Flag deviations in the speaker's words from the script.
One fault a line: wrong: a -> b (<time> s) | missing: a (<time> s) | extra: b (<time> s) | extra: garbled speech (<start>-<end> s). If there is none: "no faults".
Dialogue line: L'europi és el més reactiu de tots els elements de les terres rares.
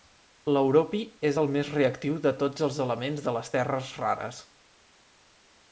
no faults